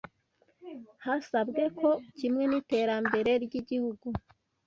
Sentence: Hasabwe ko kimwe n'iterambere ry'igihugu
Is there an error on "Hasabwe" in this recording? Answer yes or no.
no